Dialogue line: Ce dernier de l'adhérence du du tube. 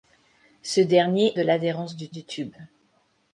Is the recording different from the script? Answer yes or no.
no